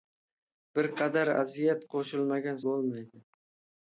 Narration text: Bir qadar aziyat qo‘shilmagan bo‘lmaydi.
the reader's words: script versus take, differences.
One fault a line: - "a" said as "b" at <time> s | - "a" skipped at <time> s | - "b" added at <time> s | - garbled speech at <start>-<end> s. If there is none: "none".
none